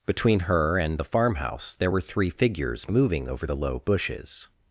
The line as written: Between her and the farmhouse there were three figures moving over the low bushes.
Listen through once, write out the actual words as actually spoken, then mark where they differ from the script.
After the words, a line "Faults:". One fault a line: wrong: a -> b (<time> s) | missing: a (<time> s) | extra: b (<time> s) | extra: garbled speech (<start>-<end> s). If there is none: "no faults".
Between her and the farmhouse there were three figures moving over the low bushes.
Faults:
no faults